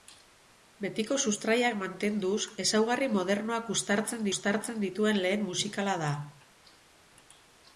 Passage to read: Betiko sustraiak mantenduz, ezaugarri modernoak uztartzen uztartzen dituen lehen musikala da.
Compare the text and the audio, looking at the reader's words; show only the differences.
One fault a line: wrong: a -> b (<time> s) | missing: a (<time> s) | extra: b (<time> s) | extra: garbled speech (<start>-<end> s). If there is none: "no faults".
no faults